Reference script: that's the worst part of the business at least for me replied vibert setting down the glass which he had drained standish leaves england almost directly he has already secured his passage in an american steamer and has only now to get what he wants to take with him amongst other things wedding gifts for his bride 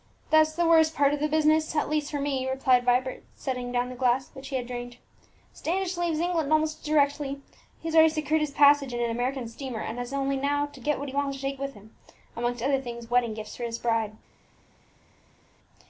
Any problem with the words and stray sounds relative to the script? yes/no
no